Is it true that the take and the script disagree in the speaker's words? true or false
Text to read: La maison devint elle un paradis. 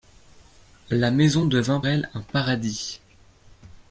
false